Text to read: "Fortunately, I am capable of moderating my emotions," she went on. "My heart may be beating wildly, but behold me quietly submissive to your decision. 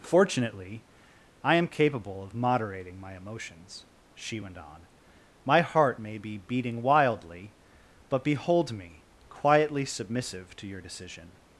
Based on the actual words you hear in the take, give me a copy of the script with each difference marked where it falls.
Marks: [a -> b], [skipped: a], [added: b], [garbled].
"Fortunately, I am capable of moderating my emotions," she went on. "My heart may be beating wildly, but behold me quietly submissive to your decision.